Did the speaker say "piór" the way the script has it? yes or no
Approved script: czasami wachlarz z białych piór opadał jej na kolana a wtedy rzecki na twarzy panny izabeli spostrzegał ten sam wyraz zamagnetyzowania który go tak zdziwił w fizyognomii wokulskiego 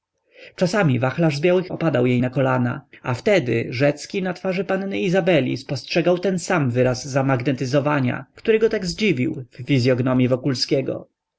no